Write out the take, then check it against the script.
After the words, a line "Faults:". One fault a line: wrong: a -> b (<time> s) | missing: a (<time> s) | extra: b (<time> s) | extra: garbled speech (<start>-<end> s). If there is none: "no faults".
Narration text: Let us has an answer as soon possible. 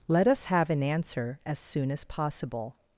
Let us have an answer as soon as possible.
Faults:
wrong: has -> have (0.4 s)
extra: as (1.9 s)